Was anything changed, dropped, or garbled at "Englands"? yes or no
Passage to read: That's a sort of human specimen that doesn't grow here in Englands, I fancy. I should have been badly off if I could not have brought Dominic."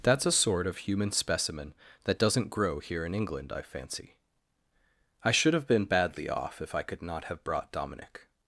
yes